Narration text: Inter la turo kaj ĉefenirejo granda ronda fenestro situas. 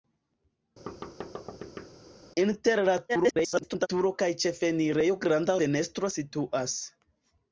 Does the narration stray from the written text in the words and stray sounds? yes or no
yes